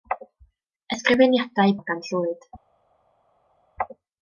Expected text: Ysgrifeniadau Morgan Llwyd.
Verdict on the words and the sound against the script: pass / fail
pass